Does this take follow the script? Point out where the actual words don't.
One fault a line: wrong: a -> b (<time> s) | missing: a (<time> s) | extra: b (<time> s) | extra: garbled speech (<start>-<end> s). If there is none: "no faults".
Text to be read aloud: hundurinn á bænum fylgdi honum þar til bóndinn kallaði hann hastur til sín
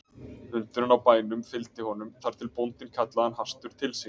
no faults